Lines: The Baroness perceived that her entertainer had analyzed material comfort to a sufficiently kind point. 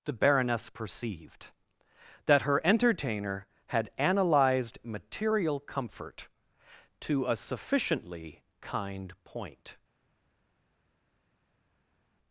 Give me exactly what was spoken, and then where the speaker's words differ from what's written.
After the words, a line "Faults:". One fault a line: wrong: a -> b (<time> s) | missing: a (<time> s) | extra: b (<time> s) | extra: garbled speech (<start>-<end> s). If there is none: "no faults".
The Baroness perceived that her entertainer had analyzed material comfort to a sufficiently kind point.
Faults:
no faults